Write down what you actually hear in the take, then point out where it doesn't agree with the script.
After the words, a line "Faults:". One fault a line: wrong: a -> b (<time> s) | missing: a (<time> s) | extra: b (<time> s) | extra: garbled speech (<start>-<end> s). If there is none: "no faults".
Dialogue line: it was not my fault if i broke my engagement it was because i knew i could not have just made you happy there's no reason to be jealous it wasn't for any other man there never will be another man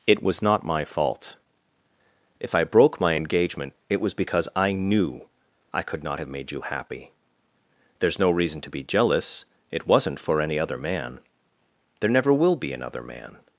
it was not my fault if i broke my engagement it was because i knew i could not have made you happy there's no reason to be jealous it wasn't for any other man there never will be another man
Faults:
missing: just (6.3 s)